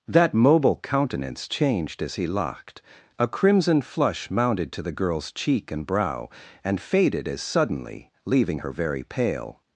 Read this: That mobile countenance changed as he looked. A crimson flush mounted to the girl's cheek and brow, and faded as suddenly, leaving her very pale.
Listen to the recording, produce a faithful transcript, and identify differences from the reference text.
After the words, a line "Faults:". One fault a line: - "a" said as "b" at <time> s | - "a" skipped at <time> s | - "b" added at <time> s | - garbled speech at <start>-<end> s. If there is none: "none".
That mobile countenance changed as he locked. A crimson flush mounted to the girl's cheek and brow, and faded as suddenly, leaving her very pale.
Faults:
- "looked" said as "locked" at 2.3 s